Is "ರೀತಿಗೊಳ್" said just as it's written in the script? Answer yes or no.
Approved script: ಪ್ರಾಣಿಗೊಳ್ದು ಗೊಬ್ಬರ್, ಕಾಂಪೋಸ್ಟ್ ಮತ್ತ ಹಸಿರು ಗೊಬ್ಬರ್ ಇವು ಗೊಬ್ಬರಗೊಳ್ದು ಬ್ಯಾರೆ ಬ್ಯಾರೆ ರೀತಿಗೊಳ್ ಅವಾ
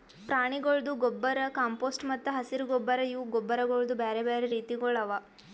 yes